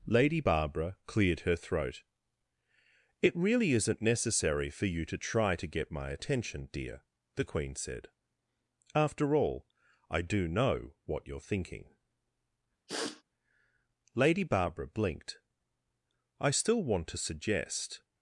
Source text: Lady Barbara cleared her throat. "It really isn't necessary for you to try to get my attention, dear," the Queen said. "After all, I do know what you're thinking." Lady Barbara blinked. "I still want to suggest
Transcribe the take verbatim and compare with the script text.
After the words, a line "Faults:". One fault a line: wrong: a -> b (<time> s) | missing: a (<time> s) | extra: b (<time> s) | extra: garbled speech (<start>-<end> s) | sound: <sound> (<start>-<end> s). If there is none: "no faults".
Lady Barbara cleared her throat. "It really isn't necessary for you to try to get my attention, dear," the Queen said. "After all, I do know what you're thinking." Lady Barbara blinked. "I still want to suggest
Faults:
sound: sniff (12.9-13.2 s)